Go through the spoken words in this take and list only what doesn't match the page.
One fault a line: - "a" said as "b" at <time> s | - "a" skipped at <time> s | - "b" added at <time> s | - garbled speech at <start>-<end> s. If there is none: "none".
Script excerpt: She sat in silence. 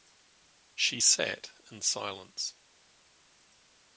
none